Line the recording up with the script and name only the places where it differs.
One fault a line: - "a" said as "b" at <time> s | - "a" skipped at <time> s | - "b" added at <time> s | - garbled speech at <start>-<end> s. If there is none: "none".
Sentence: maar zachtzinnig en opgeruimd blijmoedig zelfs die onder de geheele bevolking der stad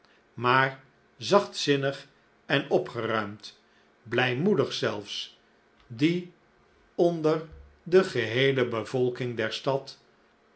none